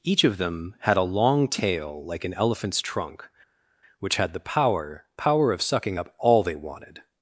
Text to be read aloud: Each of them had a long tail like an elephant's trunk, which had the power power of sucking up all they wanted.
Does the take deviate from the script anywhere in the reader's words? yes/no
no